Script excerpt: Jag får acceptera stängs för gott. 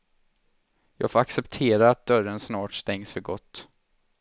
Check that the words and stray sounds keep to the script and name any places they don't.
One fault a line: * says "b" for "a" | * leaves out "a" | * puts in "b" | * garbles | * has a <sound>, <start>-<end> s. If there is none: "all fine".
* puts in "att dörren snart"